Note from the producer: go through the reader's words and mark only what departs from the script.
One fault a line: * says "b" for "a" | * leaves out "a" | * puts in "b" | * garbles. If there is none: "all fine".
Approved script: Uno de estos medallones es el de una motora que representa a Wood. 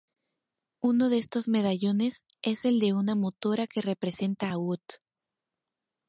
all fine